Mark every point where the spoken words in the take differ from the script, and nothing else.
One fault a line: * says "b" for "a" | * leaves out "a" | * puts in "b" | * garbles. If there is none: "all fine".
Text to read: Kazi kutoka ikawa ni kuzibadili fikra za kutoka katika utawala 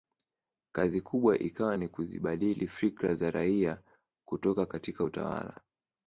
* says "kubwa" for "kutoka"
* puts in "raia"